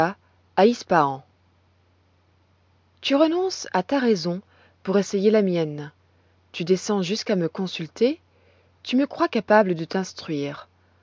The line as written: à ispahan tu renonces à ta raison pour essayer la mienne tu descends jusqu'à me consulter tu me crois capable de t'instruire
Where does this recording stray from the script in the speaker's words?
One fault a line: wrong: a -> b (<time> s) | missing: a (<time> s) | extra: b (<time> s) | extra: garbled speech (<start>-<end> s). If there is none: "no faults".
no faults